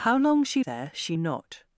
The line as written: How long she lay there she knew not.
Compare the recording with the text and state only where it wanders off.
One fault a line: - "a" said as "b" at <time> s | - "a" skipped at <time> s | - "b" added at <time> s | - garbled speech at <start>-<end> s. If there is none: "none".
- "lay" skipped at 0.6 s
- "knew" skipped at 1.2 s